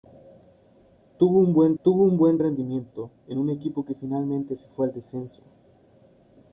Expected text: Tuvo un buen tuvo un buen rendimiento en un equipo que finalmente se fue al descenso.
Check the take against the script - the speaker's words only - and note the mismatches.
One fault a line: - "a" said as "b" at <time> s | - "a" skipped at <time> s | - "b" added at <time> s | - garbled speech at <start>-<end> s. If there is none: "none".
none